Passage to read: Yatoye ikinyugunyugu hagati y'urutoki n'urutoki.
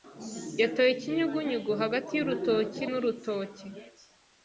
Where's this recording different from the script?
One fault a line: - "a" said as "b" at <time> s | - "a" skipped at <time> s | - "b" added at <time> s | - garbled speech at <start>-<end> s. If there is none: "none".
none